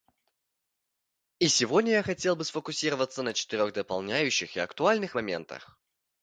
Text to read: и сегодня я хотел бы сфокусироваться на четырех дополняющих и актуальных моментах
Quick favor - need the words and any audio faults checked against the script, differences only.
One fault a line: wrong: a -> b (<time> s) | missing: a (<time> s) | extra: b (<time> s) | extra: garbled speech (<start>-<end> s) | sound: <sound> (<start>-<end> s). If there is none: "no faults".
no faults